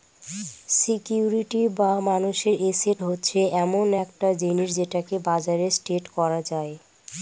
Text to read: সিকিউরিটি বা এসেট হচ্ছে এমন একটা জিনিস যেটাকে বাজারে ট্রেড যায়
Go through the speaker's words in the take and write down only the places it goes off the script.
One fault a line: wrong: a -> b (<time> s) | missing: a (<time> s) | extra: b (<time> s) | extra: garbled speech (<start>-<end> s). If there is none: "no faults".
extra: মানুষের (2.1 s)
extra: করা (6.2 s)